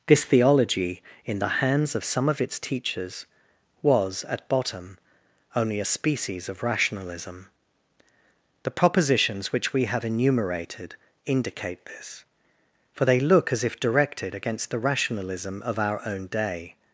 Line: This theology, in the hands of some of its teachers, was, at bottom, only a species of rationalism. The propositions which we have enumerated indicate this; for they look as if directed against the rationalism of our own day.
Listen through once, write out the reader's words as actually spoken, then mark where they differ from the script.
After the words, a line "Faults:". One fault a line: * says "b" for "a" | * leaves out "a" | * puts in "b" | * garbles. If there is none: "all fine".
This theology, in the hands of some of its teachers, was, at bottom, only a species of rationalism. The propositions which we have enumerated indicate this; for they look as if directed against the rationalism of our own day.
Faults:
all fine